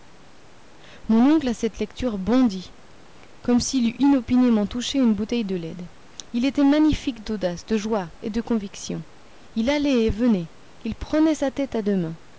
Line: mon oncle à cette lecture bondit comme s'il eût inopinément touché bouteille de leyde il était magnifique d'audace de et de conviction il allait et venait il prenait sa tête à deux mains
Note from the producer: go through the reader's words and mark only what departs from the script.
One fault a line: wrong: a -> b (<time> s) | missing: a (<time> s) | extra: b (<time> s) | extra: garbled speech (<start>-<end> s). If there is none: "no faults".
extra: une (5.0 s)
extra: joie (7.8 s)